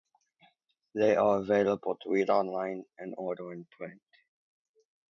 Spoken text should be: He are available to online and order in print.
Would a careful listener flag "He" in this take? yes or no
yes